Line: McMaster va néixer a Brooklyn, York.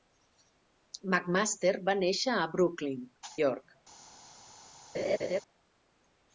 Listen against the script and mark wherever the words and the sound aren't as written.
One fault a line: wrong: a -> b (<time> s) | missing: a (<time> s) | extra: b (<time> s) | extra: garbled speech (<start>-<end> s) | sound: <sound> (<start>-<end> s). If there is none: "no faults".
sound: laugh (4.9-5.4 s)